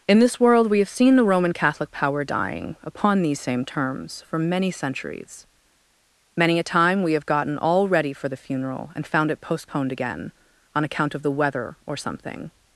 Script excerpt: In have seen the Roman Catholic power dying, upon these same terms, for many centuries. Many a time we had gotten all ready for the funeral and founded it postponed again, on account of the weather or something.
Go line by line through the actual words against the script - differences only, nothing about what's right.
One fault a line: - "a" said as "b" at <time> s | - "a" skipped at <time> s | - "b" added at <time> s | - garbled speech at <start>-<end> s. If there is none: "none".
- "this world we" added at 0.2 s
- "had" said as "have" at 7.1 s
- "founded" said as "found" at 9.1 s